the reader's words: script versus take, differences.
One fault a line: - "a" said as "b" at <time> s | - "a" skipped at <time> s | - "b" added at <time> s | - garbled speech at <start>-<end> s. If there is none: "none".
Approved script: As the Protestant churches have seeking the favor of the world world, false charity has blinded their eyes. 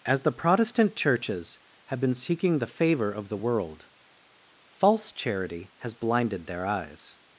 - "been" added at 2.0 s
- "world" skipped at 3.9 s